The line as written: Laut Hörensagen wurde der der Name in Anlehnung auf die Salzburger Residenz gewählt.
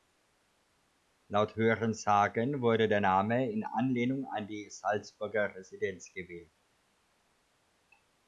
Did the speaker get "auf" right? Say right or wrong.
wrong